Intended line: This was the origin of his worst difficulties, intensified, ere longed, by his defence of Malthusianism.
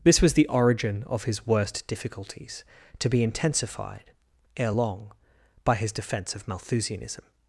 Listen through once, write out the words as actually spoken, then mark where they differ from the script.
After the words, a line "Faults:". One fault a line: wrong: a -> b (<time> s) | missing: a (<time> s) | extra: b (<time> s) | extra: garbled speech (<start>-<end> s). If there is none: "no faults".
This was the origin of his worst difficulties, to be intensified, ere long, by his defence of Malthusianism.
Faults:
extra: to be (3.0 s)
wrong: longed -> long (4.7 s)